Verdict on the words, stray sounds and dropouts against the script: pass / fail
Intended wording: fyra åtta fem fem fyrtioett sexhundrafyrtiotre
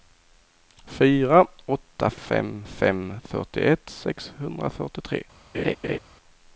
fail